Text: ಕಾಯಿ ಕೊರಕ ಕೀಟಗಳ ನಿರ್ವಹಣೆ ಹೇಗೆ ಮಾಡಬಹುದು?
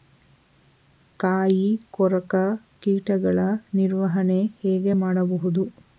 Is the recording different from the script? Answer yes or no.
no